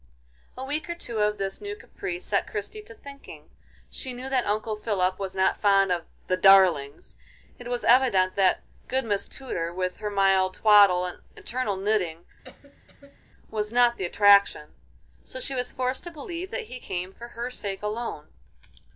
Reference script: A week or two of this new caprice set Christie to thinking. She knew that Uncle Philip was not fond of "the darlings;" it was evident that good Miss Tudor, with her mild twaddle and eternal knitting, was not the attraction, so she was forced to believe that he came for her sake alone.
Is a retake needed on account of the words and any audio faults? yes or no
yes